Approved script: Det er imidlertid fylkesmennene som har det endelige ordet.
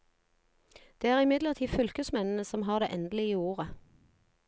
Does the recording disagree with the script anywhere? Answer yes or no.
no